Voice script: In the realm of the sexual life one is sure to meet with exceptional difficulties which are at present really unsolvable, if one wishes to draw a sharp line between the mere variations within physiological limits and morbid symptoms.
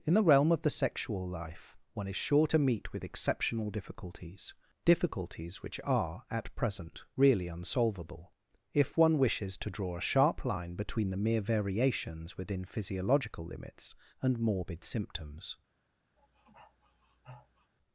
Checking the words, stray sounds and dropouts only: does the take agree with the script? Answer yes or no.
no